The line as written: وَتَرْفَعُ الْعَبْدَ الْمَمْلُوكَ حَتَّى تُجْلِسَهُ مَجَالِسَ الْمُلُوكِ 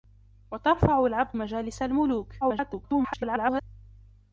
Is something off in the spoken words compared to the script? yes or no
yes